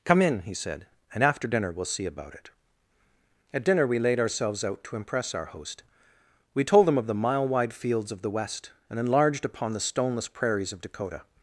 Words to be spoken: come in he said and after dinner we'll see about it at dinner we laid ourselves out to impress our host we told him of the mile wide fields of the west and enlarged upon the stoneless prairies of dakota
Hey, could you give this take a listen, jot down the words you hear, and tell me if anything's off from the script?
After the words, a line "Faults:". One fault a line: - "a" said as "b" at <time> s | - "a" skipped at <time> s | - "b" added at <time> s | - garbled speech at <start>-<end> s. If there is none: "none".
come in he said and after dinner we'll see about it at dinner we laid ourselves out to impress our host we told him of the mile wide fields of the west and enlarged upon the stoneless prairies of dakota
Faults:
none